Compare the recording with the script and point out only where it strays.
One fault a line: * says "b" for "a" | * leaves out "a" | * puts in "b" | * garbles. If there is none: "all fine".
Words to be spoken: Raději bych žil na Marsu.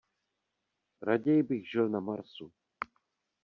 all fine